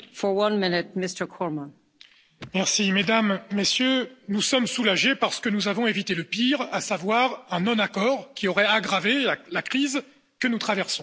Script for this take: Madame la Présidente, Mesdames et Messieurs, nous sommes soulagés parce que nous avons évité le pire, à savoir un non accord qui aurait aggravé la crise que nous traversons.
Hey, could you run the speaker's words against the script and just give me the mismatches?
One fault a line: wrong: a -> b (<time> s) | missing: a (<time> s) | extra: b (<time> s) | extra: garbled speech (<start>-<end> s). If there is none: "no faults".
no faults